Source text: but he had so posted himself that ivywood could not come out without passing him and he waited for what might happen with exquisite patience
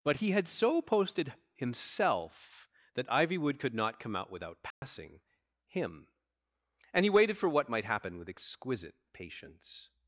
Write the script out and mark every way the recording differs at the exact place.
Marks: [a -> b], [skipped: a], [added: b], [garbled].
but he had so posted himself that ivywood could not come out without passing him and he waited for what might happen with exquisite patience